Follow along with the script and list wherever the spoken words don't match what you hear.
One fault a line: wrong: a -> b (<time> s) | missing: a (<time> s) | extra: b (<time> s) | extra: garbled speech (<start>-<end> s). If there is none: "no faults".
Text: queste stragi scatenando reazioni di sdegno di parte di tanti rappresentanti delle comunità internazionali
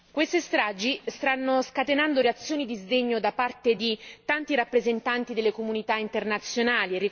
extra: stanno (1.1 s)
wrong: di -> da (3.2 s)